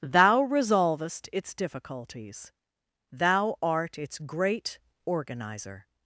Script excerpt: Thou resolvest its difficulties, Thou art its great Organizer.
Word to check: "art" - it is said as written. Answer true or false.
true